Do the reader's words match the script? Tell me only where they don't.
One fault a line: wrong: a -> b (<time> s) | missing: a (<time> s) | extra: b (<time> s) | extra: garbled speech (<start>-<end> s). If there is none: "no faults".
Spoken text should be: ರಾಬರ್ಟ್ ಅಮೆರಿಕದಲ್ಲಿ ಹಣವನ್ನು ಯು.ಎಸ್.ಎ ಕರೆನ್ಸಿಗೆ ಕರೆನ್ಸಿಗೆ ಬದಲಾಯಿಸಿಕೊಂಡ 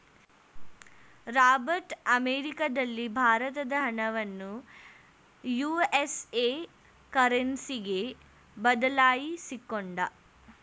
extra: ಭಾರತದ (3.2 s)
missing: ಕರೆನ್ಸಿಗೆ (8.0 s)